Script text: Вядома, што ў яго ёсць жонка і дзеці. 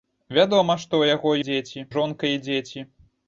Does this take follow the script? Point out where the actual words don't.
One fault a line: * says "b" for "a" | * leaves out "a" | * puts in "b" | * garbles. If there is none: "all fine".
* says "дзеці" for "ёсць"